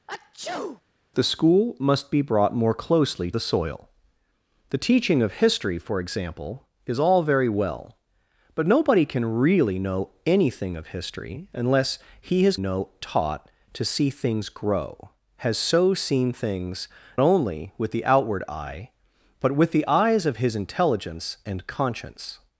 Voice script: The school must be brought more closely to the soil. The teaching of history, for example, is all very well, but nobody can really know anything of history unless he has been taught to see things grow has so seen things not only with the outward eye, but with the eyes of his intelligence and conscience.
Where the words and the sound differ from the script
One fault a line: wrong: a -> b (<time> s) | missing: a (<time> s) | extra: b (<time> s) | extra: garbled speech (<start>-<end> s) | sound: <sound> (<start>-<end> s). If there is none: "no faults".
sound: sneeze (0.1-0.8 s)
missing: to (3.3 s)
wrong: been -> know (12.6 s)
missing: not (16.9 s)